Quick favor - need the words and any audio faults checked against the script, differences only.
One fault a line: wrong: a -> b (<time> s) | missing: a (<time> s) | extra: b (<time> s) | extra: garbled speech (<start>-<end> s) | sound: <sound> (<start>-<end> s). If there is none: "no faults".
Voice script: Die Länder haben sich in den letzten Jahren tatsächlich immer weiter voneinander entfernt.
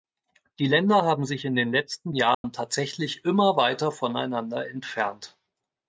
sound: dropout (2.3-2.4 s)